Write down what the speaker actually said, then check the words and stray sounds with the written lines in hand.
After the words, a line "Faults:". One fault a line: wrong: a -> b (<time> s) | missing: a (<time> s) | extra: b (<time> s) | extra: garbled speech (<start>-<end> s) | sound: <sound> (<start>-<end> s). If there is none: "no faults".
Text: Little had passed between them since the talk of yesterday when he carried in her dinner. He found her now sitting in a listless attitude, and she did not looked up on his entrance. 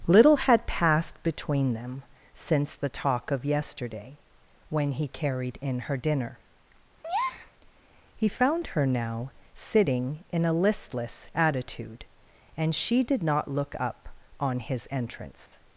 Little had passed between them since the talk of yesterday when he carried in her dinner. He found her now sitting in a listless attitude, and she did not look up on his entrance.
Faults:
sound: breath (7.0-7.5 s)
wrong: looked -> look (13.5 s)
sound: dropout (15.5-15.5 s)